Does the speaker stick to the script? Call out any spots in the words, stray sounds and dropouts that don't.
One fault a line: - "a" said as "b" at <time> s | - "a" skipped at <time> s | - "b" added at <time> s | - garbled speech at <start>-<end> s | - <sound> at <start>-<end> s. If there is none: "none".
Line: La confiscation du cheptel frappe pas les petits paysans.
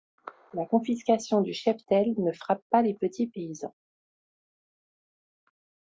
- "ne" added at 2.2 s